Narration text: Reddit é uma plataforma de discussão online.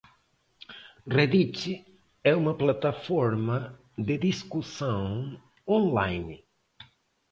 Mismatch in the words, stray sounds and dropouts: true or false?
false